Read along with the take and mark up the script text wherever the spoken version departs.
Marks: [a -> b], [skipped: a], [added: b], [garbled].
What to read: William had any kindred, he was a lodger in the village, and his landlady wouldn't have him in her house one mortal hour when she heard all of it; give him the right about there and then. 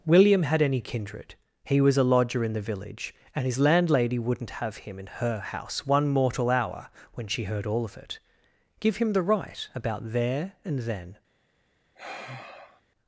William had any kindred, he was a lodger in the village, and his landlady wouldn't have him in her house one mortal hour when she heard all of it; give him the right about there and then.